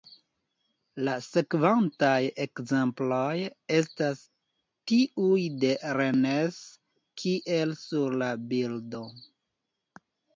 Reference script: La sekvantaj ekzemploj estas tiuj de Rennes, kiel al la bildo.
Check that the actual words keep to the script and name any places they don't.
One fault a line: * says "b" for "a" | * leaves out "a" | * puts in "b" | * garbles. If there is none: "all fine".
* says "sur" for "al"